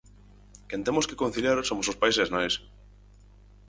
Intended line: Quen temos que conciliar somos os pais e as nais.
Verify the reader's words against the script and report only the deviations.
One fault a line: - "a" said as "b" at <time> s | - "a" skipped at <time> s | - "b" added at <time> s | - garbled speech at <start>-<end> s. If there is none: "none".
none